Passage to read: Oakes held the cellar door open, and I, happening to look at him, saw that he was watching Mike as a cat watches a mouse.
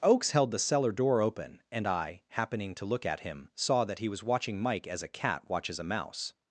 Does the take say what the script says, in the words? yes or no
yes